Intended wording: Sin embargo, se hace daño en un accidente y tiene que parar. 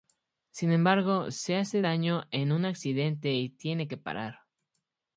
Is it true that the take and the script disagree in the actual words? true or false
false